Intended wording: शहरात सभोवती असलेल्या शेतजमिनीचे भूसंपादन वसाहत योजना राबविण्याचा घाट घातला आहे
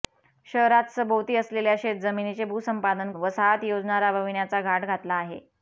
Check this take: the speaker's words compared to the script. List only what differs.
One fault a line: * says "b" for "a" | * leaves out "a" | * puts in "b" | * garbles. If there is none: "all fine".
all fine